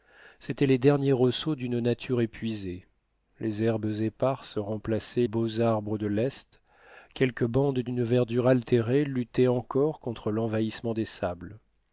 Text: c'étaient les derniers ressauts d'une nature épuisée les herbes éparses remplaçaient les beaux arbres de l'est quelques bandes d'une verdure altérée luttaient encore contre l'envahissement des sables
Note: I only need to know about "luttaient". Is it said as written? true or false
true